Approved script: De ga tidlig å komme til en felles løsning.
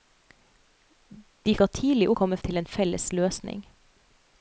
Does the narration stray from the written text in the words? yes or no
no